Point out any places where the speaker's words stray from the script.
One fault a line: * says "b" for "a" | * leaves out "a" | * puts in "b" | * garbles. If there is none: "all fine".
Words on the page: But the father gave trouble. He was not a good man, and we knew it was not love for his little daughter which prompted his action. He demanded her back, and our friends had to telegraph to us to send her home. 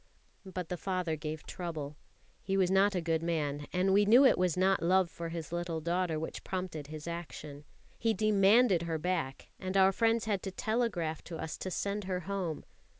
all fine